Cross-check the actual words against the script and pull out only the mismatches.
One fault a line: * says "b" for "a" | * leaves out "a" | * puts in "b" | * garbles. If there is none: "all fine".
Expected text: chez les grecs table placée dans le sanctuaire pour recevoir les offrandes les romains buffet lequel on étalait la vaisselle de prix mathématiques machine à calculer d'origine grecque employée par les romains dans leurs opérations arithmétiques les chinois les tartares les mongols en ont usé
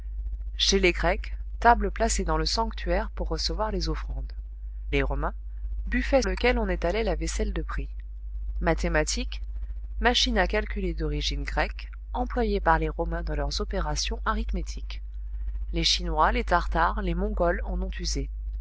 all fine